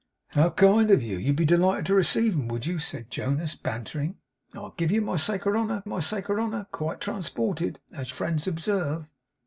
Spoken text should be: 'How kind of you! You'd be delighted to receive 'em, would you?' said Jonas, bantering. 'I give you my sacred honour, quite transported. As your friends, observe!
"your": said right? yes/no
no